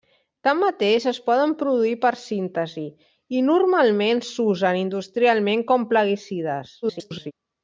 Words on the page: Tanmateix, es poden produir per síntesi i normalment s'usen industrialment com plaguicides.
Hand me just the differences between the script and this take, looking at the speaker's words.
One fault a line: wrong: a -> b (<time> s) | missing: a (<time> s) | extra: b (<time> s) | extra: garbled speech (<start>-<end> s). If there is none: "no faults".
extra: garbled speech (6.8-7.3 s)